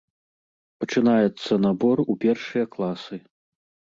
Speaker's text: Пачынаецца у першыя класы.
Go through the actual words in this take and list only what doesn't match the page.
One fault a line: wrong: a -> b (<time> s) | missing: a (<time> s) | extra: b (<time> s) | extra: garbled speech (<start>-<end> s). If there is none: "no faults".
extra: набор (1.6 s)